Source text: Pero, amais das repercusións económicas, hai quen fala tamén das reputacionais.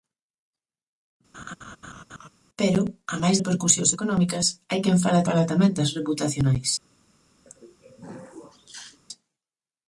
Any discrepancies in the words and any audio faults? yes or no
yes